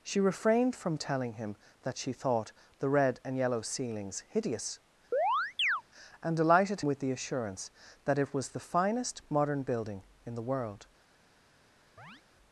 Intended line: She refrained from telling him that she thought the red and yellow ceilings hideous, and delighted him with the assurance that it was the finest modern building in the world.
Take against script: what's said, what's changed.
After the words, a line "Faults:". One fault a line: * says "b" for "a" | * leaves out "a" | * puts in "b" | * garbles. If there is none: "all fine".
She refrained from telling him that she thought the red and yellow ceilings hideous, and delighted with the assurance that it was the finest modern building in the world.
Faults:
* leaves out "him"